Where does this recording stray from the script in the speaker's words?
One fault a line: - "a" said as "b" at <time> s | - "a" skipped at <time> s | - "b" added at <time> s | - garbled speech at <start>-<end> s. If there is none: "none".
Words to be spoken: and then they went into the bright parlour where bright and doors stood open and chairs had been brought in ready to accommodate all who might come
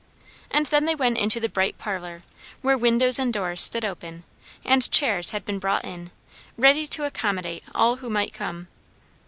- "bright" said as "windows" at 2.8 s